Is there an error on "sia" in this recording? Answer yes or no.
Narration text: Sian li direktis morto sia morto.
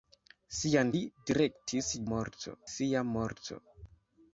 no